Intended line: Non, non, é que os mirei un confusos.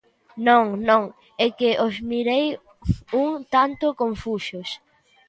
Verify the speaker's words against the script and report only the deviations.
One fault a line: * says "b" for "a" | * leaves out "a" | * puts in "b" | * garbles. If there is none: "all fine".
* puts in "tanto"